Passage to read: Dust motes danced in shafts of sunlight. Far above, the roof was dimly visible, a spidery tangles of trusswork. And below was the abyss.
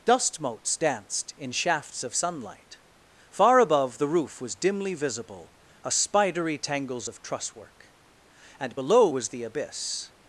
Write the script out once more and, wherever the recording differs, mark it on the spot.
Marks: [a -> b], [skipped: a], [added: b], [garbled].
Dust motes danced in shafts of sunlight. Far above, the roof was dimly visible, a spidery tangles of trusswork. And below was the abyss.